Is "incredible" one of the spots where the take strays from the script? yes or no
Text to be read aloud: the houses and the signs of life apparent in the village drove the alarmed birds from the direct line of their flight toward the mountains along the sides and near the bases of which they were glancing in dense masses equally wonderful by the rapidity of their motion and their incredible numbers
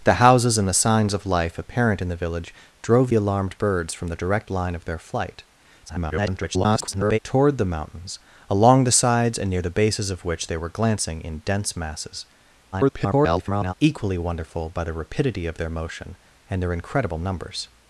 no